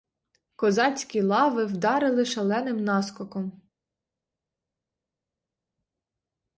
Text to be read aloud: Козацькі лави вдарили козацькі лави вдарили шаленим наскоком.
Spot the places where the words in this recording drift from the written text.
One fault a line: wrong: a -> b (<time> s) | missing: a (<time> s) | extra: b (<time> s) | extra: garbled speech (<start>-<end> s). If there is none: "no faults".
missing: козацькі лави вдарили (2.2 s)